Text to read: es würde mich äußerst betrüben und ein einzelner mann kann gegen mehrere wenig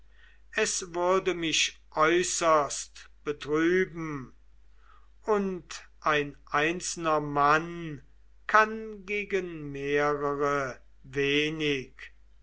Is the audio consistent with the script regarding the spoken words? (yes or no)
yes